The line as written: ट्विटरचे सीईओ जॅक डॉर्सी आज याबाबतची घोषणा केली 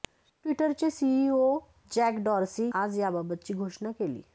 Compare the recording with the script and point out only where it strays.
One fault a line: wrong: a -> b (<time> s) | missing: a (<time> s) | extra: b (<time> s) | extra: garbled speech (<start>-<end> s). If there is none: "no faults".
no faults